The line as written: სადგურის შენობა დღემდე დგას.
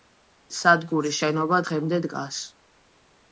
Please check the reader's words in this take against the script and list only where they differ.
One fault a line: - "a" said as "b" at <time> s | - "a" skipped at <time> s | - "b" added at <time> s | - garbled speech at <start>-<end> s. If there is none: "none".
none